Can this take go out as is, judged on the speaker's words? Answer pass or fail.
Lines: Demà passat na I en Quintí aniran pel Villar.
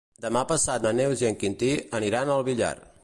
fail